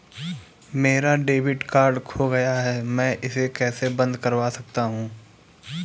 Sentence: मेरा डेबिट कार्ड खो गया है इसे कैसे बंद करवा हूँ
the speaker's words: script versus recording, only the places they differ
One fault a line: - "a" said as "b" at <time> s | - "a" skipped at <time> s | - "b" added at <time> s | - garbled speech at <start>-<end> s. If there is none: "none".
- "मैं" added at 2.8 s
- "सकता" added at 4.5 s